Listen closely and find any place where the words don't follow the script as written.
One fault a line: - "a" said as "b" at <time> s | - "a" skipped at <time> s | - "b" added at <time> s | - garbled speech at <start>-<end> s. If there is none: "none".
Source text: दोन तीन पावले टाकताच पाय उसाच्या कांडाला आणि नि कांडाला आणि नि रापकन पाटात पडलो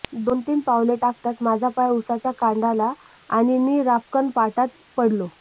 - "माझा" added at 1.4 s
- "कांडाला आणि नि" skipped at 3.8 s